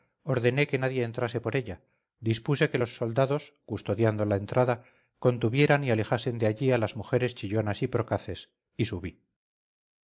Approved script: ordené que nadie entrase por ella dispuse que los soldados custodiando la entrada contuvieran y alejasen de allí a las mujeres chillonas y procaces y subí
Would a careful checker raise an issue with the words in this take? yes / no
no